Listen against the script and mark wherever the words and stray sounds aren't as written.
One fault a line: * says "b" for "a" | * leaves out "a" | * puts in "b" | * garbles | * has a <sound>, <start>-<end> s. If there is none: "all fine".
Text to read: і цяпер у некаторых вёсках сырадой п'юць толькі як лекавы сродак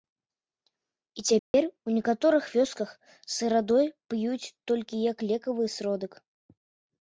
* has a dropout, 1.4-1.5 s